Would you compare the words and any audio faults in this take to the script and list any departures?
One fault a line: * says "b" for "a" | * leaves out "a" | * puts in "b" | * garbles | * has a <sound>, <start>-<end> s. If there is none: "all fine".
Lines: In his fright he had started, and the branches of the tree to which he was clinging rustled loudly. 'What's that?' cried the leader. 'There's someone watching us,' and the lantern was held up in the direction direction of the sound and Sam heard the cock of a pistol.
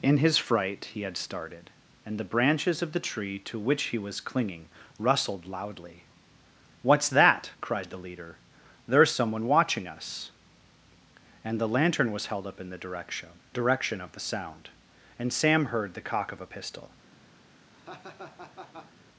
* has a laugh, 17.7-18.9 s